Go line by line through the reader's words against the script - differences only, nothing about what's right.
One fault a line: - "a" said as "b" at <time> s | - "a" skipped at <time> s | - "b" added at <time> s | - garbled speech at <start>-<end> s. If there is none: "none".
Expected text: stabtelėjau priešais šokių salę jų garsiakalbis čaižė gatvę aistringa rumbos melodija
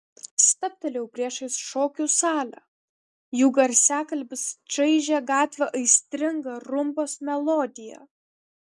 none